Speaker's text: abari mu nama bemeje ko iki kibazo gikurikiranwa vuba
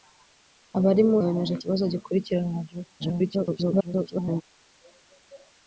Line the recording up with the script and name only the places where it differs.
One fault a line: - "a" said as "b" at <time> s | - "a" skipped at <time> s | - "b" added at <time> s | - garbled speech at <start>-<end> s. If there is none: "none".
- "nama" skipped at 1.2 s
- "iki" skipped at 1.6 s
- garbled speech at 3.0-4.4 s